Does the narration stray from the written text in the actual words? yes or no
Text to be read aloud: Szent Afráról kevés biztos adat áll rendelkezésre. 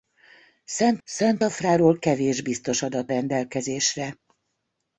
yes